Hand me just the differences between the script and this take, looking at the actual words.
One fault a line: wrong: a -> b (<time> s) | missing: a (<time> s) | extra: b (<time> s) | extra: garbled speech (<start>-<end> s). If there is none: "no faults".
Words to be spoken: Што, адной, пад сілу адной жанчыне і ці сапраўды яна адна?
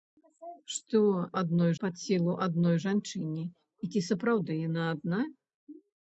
no faults